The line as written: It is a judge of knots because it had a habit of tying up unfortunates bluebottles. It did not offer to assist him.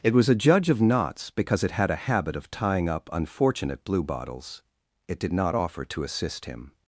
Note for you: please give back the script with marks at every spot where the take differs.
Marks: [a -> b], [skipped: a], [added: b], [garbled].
It [is -> was] a judge of knots because it had a habit of tying up [unfortunates -> unfortunate] bluebottles. It did not offer to assist him.